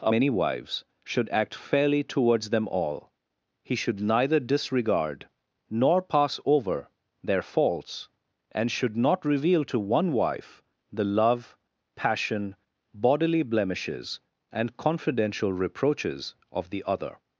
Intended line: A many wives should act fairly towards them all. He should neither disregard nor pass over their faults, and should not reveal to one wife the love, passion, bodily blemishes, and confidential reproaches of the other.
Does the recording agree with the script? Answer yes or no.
yes